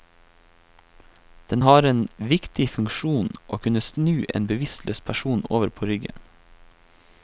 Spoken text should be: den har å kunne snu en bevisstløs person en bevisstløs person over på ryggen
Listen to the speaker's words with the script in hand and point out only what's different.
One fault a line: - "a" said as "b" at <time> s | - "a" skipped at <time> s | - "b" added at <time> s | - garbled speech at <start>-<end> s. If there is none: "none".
- "en viktig funksjon" added at 1.8 s
- "en bevisstløs person" skipped at 5.4 s